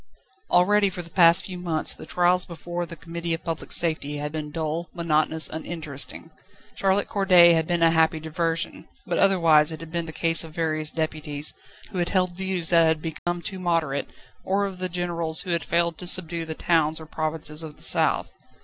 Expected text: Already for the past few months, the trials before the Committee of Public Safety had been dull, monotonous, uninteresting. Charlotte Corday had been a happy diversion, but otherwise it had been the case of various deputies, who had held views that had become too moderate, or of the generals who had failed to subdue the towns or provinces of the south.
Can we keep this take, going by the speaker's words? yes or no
yes